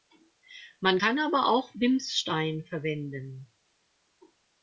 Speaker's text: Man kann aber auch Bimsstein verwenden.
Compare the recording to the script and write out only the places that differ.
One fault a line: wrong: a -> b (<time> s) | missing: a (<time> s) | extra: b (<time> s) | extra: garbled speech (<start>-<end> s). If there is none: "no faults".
no faults